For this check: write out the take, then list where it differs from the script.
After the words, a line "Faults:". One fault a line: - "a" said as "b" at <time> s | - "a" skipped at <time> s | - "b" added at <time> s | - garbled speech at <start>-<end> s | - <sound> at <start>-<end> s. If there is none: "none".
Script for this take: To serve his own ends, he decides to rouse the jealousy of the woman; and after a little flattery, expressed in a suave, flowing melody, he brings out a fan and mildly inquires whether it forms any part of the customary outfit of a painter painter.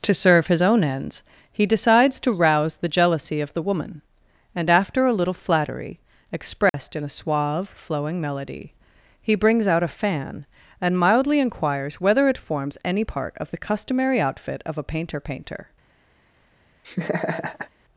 To serve his own ends, he decides to rouse the jealousy of the woman; and after a little flattery, expressed in a suave, flowing melody, he brings out a fan and mildly inquires whether it forms any part of the customary outfit of a painter painter.
Faults:
- dropout at 6.7-6.7 s
- laugh at 16.8-17.7 s